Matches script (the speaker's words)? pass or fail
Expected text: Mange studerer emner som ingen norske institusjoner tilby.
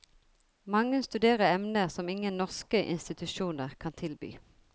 fail